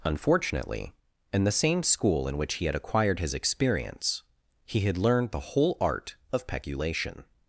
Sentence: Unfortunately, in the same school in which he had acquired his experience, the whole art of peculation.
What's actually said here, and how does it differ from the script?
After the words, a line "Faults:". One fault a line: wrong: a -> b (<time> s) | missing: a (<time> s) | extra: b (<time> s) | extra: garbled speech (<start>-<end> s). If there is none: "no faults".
Unfortunately, in the same school in which he had acquired his experience, he had learned the whole art of peculation.
Faults:
extra: he had learned (4.7 s)